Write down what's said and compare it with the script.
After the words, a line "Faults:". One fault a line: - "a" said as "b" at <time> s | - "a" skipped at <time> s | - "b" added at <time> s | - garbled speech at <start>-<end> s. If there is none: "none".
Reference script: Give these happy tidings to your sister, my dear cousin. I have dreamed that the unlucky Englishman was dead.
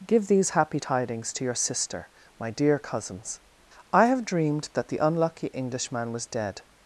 Give these happy tidings to your sister, my dear cousins. I have dreamed that the unlucky Englishman was dead.
Faults:
- "cousin" said as "cousins" at 2.8 s